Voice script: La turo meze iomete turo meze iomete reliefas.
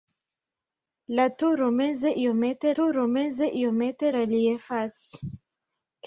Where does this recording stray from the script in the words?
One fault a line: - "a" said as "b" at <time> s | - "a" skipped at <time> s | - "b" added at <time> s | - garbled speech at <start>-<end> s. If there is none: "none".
none